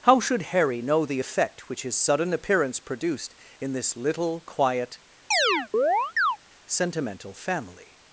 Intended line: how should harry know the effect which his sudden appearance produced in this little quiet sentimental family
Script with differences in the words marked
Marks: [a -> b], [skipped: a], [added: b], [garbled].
how should harry know the effect which his sudden appearance produced in this little quiet sentimental family